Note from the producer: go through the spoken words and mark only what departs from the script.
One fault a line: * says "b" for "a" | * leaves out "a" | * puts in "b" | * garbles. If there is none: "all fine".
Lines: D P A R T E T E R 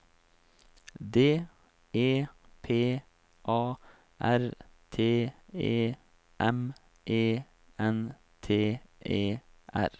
* puts in "E"
* puts in "M E N"